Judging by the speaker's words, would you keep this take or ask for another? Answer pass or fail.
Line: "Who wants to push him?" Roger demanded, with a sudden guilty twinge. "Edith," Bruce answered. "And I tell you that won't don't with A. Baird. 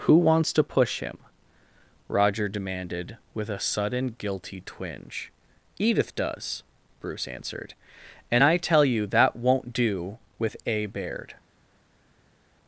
fail